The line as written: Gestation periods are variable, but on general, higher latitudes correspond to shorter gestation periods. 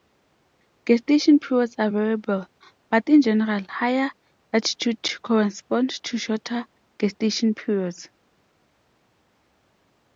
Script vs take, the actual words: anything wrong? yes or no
yes